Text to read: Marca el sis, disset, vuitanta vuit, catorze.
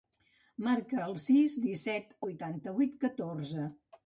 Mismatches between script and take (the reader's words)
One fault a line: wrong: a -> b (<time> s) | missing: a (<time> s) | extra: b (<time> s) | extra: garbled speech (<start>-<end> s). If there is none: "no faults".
no faults